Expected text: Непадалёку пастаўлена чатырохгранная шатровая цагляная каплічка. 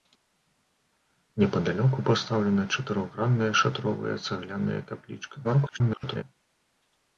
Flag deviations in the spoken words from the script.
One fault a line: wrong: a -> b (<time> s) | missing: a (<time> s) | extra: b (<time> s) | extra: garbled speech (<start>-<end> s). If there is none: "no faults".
extra: garbled speech (5.4-6.2 s)